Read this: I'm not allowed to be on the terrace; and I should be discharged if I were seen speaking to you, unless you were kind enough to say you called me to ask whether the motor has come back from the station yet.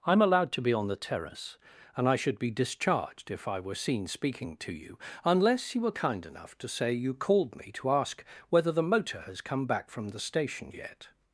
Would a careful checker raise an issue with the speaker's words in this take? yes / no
yes